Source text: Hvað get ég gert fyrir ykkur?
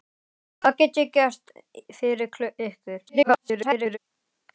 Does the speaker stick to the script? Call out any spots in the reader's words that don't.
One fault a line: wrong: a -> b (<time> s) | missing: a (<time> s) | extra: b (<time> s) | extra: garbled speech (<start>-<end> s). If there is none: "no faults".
extra: garbled speech (3.1-4.0 s)